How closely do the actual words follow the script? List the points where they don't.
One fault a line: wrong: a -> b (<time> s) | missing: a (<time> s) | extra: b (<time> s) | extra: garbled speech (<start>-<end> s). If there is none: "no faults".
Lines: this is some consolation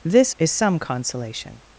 no faults